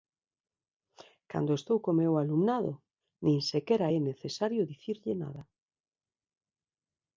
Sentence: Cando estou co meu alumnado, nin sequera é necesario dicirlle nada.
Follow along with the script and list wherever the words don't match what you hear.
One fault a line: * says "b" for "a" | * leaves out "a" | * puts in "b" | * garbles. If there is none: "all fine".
all fine